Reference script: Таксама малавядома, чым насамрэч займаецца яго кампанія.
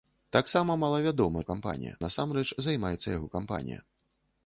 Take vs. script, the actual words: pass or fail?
fail